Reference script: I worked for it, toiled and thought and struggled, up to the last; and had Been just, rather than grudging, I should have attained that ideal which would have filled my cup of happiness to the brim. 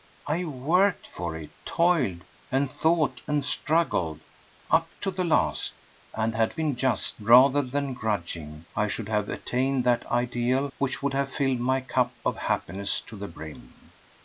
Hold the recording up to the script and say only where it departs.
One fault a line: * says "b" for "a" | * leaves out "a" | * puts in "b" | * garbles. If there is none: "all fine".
all fine